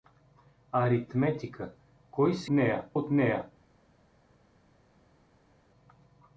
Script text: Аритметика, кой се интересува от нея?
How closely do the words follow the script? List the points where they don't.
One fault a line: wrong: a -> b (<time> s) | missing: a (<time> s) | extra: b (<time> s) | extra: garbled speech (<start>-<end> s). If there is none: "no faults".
wrong: интересува -> нея (2.5 s)